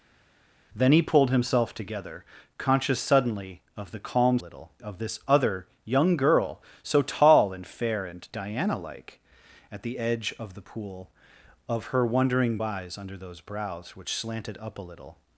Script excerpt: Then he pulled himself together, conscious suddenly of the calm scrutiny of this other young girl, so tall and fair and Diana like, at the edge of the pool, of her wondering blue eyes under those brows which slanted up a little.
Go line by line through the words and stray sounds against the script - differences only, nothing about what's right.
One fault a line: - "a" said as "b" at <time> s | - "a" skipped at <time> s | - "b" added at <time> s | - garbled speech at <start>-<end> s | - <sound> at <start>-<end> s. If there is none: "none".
- "scrutiny" said as "little" at 4.4 s
- "blue" skipped at 12.6 s